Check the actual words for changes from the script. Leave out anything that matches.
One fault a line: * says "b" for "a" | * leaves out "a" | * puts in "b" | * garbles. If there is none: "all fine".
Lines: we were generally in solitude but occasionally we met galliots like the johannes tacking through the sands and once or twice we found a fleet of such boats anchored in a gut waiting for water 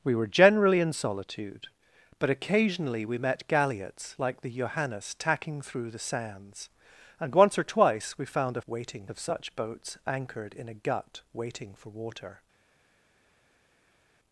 * says "waiting" for "fleet"